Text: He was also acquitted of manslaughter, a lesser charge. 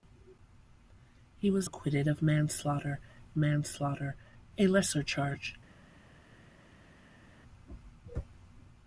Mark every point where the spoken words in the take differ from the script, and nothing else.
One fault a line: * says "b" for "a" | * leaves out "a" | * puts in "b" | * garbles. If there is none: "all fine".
* leaves out "also"
* puts in "manslaughter"